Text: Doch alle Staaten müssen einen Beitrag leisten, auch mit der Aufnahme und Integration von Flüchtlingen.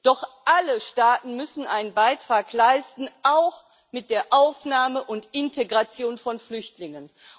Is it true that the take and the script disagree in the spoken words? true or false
false